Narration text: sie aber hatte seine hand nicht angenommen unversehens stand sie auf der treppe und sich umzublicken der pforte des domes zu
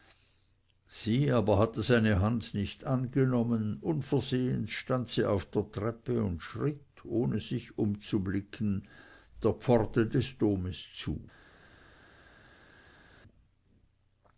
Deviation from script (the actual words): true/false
true